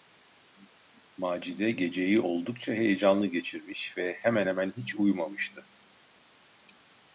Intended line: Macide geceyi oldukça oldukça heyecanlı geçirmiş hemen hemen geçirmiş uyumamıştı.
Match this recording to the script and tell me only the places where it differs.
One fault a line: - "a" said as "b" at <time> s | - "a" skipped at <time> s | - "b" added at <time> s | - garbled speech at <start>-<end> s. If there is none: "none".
- "oldukça" skipped at 2.7 s
- "ve" added at 4.0 s
- "geçirmiş" said as "hiç" at 4.8 s